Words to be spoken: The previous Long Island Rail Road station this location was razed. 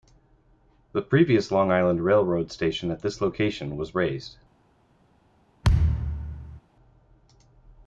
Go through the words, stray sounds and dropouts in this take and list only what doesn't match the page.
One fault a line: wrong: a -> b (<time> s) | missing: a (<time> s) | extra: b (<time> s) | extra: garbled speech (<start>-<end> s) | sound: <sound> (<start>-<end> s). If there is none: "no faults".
extra: at (2.9 s)
sound: thud (5.6-6.6 s)